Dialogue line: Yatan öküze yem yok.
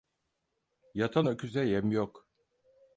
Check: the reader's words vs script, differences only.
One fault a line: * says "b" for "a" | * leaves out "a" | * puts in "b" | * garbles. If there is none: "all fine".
all fine